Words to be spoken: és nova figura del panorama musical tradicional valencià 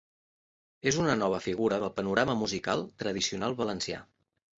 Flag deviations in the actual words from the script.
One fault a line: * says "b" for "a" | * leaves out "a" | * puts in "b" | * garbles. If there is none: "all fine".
* puts in "una"